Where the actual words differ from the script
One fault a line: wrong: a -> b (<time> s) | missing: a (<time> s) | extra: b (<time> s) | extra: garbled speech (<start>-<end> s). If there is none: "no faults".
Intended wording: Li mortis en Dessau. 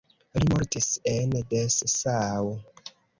no faults